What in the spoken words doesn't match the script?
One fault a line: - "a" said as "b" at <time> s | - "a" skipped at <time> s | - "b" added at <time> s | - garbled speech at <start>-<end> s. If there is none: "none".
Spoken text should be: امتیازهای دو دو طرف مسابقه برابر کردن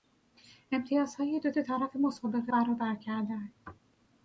none